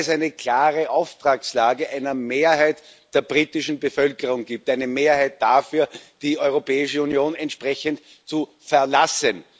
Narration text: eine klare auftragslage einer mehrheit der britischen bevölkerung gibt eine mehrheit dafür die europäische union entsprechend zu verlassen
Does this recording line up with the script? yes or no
yes